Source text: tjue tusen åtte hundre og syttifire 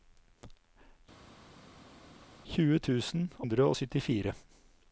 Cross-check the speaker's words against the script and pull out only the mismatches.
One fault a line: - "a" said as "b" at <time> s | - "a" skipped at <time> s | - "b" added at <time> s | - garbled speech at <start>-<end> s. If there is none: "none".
- "åtte" skipped at 3.3 s